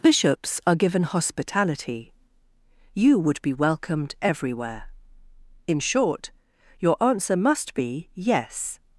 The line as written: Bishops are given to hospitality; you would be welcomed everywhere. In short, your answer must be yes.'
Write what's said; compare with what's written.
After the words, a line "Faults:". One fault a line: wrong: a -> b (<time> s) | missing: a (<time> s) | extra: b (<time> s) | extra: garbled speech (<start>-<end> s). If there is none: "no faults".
Bishops are given hospitality; you would be welcomed everywhere. In short, your answer must be yes.'
Faults:
missing: to (1.0 s)